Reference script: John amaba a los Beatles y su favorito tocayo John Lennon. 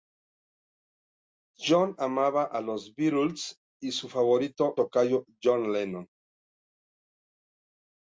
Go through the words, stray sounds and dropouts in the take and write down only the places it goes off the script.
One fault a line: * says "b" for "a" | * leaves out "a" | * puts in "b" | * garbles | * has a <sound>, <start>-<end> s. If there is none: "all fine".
all fine